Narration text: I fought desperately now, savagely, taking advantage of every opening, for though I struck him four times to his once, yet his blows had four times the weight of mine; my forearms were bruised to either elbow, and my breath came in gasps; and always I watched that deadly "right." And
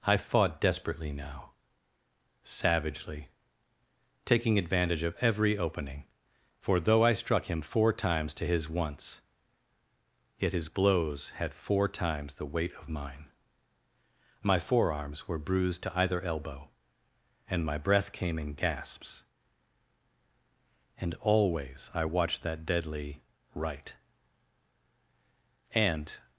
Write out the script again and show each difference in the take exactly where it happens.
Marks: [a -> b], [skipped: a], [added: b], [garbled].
I fought desperately now, savagely, taking advantage of every opening, for though I struck him four times to his once, yet his blows had four times the weight of mine; my forearms were bruised to either elbow, and my breath came in gasps; and always I watched that deadly "right." And